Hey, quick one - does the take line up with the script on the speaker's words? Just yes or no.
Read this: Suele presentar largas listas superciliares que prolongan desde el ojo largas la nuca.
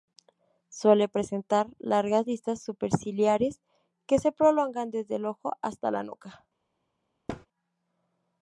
no